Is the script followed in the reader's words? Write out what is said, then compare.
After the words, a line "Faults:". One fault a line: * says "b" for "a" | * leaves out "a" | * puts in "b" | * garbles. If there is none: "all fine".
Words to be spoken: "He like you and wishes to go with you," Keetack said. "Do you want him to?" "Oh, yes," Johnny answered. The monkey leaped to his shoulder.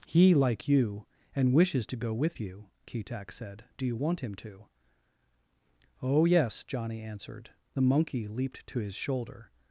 "He like you and wishes to go with you," Keetack said. "Do you want him to?" "Oh, yes," Johnny answered. The monkey leaped to his shoulder.
Faults:
all fine